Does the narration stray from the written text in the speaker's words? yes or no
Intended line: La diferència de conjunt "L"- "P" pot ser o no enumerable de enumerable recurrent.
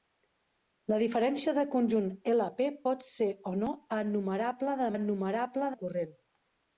no